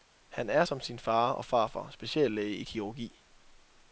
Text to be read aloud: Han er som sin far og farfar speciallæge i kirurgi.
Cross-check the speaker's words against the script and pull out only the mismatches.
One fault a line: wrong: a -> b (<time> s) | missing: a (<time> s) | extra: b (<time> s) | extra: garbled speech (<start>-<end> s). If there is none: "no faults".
no faults